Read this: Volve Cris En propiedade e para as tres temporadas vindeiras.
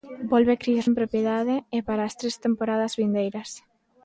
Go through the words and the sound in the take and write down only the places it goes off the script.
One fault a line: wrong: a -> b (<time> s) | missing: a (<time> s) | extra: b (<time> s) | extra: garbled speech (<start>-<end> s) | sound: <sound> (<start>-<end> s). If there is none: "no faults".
no faults